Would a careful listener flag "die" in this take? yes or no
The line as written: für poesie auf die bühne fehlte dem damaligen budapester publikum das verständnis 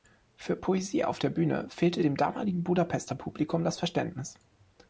yes